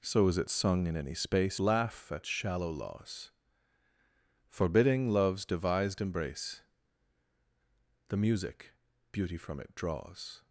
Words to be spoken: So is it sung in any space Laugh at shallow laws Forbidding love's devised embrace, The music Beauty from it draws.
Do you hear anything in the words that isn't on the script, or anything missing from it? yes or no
no